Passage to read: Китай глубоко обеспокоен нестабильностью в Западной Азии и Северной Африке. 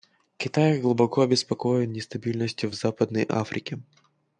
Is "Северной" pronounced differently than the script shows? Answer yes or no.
yes